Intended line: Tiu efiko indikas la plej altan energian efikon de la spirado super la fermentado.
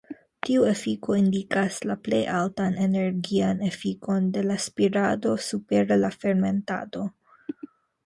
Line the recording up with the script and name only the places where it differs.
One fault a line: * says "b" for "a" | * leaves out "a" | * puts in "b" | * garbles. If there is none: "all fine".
all fine